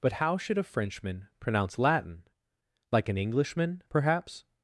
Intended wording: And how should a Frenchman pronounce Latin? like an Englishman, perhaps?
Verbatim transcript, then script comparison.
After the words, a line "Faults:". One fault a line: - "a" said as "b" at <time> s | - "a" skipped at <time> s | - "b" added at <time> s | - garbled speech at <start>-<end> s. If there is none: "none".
But how should a Frenchman pronounce Latin? like an Englishman, perhaps?
Faults:
- "And" said as "But" at 0.0 s